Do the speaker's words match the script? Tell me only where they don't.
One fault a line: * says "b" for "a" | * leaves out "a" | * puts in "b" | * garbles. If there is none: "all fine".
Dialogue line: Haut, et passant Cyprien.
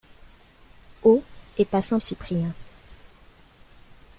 all fine